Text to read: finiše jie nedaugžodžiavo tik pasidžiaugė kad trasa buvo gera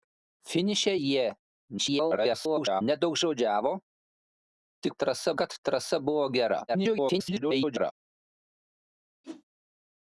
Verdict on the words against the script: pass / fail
fail